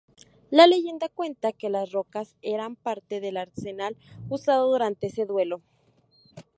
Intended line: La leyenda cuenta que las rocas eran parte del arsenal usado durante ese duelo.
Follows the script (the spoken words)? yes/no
yes